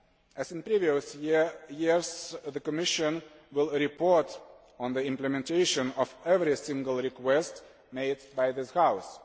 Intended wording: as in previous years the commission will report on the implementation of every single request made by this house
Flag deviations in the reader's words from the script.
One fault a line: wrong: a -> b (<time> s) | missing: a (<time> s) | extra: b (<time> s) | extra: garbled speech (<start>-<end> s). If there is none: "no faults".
no faults